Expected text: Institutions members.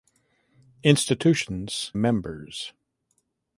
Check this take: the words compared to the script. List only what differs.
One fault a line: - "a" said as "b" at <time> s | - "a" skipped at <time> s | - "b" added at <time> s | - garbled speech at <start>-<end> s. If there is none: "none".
none